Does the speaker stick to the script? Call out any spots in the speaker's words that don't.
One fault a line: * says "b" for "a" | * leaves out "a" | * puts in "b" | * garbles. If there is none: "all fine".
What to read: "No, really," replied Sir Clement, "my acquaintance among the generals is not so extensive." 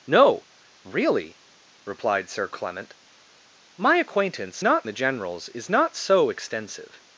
* says "not" for "among"